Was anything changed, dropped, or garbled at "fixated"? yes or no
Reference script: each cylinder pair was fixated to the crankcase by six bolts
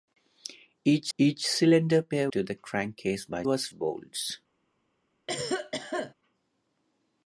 yes